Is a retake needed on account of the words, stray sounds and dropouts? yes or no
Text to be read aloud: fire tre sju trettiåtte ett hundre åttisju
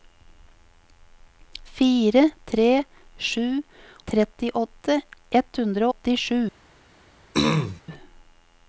yes